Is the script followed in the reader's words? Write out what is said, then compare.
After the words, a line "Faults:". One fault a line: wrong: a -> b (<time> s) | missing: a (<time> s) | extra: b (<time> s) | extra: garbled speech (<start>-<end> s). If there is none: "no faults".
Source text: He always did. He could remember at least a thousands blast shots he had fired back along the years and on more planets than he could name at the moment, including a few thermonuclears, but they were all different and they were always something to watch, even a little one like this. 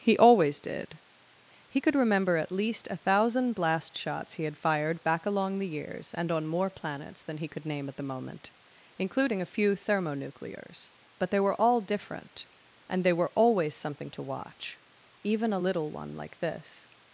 He always did. He could remember at least a thousand blast shots he had fired back along the years and on more planets than he could name at the moment, including a few thermonuclears, but they were all different and they were always something to watch, even a little one like this.
Faults:
wrong: thousands -> thousand (3.0 s)